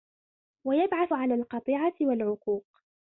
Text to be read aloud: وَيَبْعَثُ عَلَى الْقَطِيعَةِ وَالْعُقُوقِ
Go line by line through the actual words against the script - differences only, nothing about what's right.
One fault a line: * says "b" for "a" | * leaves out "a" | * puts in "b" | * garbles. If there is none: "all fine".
all fine